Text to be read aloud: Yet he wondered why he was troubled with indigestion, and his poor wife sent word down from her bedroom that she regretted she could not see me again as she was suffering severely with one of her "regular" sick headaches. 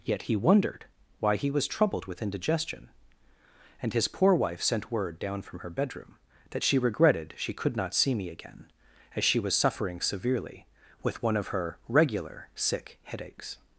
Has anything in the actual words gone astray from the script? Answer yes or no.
no